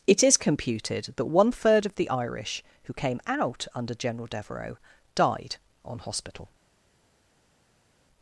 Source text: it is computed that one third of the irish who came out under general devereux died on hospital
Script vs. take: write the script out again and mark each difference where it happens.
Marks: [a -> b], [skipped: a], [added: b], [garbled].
it is computed that one third of the irish who came out under general devereux died on hospital